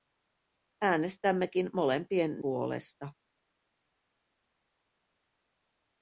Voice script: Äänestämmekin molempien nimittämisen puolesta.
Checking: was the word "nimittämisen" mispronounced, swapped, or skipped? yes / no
yes